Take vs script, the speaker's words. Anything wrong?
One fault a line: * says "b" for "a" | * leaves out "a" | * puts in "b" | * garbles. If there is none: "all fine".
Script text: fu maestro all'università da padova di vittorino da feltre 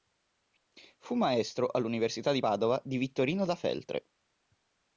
* says "di" for "da"